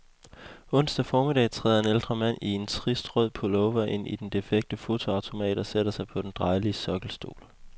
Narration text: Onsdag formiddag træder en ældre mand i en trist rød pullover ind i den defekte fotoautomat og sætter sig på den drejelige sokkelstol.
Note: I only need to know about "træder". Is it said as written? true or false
true